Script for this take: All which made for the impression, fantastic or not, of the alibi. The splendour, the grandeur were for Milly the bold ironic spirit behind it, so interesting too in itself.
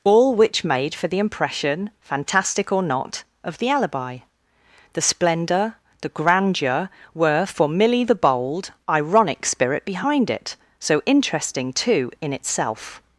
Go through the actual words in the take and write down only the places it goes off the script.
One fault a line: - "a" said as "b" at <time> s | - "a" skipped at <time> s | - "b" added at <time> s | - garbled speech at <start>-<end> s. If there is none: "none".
none